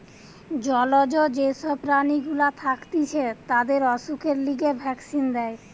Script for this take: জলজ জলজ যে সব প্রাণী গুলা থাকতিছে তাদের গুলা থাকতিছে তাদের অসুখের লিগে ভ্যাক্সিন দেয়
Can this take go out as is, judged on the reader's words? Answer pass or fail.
fail